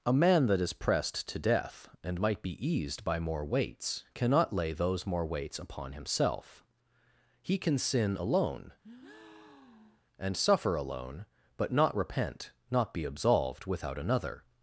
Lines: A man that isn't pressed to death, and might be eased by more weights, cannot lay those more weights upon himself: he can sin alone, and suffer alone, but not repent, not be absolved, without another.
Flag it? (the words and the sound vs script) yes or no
yes